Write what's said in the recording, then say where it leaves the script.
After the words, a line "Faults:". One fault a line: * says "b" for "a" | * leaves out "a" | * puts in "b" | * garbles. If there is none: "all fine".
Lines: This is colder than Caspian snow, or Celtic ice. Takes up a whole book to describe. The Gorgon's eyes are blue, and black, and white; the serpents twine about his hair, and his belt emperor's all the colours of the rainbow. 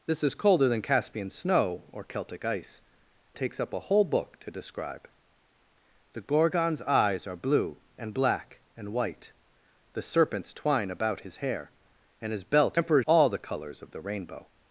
This is colder than Caspian snow, or Celtic ice. Takes up a whole book to describe. The Gorgon's eyes are blue, and black, and white; the serpents twine about his hair, and his belt emperor's all the colours of the rainbow.
Faults:
all fine